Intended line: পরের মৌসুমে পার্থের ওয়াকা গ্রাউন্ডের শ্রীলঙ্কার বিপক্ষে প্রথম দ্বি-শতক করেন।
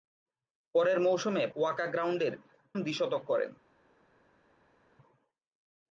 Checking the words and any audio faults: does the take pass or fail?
fail